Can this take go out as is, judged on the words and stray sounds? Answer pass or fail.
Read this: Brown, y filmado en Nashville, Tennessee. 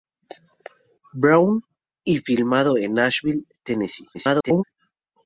fail